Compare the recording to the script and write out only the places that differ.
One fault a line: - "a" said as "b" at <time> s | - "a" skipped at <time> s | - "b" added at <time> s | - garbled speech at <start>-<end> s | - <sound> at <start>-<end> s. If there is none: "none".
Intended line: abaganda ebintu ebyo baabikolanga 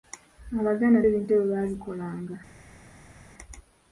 none